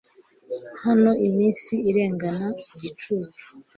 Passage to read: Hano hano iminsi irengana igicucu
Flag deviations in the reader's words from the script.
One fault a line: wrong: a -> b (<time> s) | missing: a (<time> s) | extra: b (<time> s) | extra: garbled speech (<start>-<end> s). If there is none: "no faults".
missing: hano (1.1 s)